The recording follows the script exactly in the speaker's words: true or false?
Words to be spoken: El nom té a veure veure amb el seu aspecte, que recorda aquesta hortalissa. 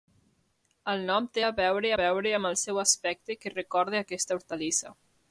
true